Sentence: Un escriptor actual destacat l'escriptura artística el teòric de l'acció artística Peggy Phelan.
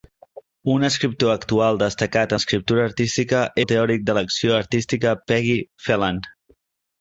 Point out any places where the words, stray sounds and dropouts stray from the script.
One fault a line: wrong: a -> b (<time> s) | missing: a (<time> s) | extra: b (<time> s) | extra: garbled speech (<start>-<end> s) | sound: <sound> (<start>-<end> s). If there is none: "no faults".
no faults